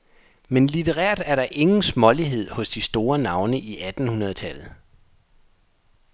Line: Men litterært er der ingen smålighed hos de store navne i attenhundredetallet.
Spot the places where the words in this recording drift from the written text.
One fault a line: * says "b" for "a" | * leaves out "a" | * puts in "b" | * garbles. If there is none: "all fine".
all fine